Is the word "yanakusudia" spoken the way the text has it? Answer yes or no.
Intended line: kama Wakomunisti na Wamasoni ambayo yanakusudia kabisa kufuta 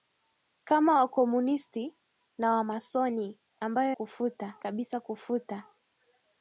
no